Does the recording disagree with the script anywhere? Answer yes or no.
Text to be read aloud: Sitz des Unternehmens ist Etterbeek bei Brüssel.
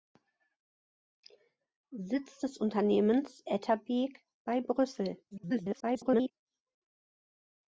yes